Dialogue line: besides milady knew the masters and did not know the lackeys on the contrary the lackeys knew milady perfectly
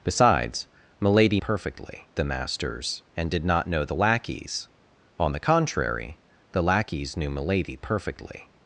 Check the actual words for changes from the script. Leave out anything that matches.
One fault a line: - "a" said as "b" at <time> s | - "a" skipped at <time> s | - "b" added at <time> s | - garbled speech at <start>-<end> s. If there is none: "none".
- "knew" said as "perfectly" at 1.4 s